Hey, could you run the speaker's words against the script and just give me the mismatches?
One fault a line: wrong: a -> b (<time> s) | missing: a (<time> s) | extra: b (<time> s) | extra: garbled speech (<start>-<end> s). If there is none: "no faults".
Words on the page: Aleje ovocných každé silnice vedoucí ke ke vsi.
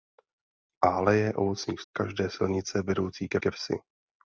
no faults